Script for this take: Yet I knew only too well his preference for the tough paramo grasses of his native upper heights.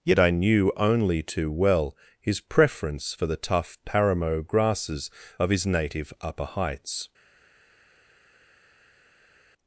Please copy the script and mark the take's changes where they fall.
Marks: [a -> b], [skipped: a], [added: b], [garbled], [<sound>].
Yet I knew only too well his preference for the tough paramo grasses of his native upper heights.